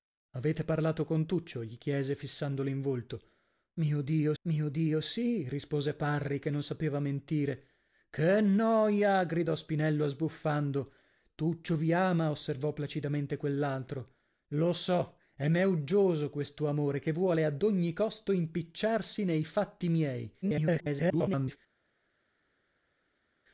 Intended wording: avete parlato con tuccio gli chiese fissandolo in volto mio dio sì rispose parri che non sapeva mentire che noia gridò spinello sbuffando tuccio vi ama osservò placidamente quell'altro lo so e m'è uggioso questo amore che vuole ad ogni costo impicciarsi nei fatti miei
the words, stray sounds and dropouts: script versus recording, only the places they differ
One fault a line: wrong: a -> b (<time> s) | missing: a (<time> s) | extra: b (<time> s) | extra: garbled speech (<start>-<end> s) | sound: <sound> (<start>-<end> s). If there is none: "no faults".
extra: mio dio (4.4 s)
extra: garbled speech (20.4-21.6 s)